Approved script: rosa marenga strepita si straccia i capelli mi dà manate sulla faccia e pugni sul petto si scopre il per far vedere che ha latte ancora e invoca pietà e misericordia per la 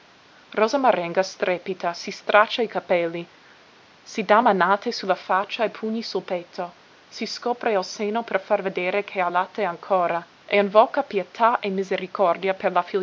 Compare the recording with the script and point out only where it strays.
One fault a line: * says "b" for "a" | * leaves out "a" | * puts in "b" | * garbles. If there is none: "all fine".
* says "si" for "mi"
* puts in "seno"